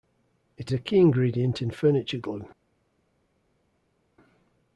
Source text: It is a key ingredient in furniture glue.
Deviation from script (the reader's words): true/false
true